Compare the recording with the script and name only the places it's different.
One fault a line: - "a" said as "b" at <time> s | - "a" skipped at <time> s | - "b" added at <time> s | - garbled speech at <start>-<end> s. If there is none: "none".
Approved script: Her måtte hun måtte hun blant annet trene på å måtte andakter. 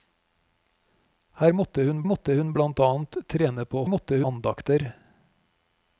none